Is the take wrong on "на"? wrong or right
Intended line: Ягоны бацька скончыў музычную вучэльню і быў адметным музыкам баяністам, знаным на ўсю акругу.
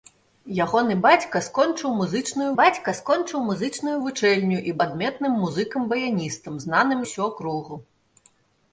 wrong